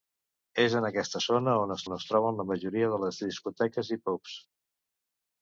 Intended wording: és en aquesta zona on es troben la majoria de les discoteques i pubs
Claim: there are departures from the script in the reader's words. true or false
true